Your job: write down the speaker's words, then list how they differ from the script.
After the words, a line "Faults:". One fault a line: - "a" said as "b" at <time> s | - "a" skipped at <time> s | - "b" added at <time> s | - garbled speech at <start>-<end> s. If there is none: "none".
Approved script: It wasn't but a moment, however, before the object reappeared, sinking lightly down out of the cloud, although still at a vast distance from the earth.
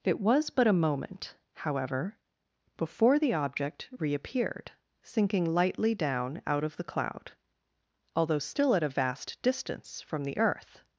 It was but a moment, however, before the object reappeared, sinking lightly down out of the cloud, although still at a vast distance from the earth.
Faults:
- "wasn't" said as "was" at 0.2 s